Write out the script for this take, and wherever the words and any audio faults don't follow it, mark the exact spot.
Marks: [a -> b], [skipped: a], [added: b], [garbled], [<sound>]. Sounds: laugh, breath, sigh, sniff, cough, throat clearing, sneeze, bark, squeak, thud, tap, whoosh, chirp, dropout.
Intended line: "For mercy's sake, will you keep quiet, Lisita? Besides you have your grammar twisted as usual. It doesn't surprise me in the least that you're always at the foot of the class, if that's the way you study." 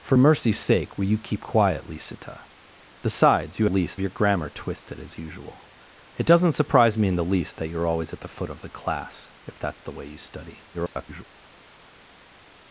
"For mercy's sake, will you keep quiet, Lisita? Besides you [have -> least] your grammar twisted as usual. It doesn't surprise me in the least that you're always at the foot of the class, if that's the way you study." [garbled]